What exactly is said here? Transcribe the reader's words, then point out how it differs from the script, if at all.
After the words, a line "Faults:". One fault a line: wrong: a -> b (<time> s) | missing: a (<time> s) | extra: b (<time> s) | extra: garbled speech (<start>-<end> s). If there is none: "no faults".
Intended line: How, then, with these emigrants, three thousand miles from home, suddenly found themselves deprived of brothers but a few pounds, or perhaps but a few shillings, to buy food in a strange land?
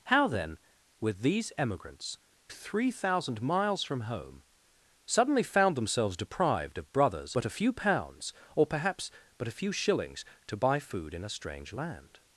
How, then, with these emigrants, three thousand miles from home, suddenly found themselves deprived of brothers but a few pounds, or perhaps but a few shillings, to buy food in a strange land?
Faults:
no faults